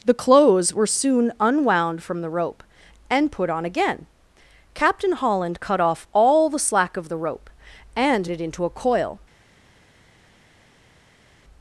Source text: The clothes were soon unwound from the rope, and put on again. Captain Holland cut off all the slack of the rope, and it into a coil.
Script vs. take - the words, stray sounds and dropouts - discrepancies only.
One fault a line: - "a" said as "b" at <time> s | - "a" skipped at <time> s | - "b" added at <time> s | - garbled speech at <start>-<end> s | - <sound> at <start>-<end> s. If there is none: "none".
none